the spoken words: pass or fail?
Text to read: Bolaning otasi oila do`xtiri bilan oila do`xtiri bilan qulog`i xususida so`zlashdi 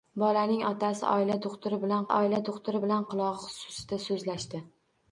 pass